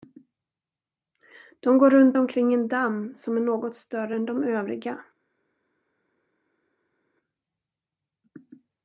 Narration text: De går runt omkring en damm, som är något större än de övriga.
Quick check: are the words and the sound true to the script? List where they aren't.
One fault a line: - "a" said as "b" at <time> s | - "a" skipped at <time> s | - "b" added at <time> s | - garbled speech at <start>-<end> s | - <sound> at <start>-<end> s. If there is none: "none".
none